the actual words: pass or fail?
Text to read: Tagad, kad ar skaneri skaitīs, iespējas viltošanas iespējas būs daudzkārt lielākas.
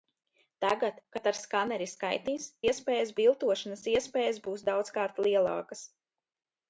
pass